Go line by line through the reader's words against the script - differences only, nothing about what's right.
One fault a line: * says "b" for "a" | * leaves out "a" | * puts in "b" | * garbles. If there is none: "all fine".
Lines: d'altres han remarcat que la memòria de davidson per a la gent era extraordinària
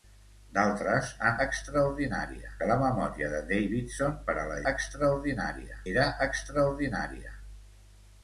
* says "extraordinària" for "remarcat"
* says "extraordinària" for "gent"